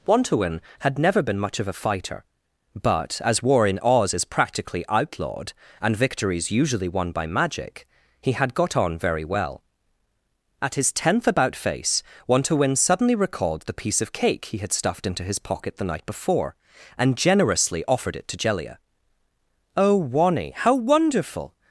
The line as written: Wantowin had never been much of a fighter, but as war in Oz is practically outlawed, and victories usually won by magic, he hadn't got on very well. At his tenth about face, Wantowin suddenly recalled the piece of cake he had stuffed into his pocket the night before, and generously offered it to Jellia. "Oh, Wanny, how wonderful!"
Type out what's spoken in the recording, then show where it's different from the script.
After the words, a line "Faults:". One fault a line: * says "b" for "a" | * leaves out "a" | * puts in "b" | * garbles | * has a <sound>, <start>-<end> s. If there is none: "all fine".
Wantowin had never been much of a fighter, but as war in Oz is practically outlawed, and victories usually won by magic, he had got on very well. At his tenth about face, Wantowin suddenly recalled the piece of cake he had stuffed into his pocket the night before, and generously offered it to Jellia. "Oh, Wanny, how wonderful!"
Faults:
* says "had" for "hadn't"